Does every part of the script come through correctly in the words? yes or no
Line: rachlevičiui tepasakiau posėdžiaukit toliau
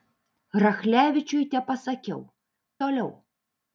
no